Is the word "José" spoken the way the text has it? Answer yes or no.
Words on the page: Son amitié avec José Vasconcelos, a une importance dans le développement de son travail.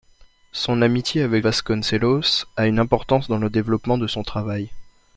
no